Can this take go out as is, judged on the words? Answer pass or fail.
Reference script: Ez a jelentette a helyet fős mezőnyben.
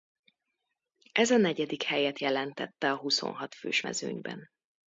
fail